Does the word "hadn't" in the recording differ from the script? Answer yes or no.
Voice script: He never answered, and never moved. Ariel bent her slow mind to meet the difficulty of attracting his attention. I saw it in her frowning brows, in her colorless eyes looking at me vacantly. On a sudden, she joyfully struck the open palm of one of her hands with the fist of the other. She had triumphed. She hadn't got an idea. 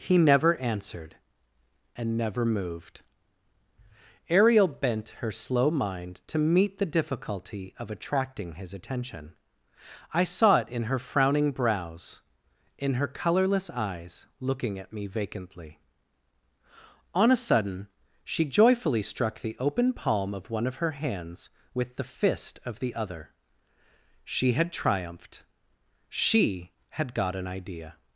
yes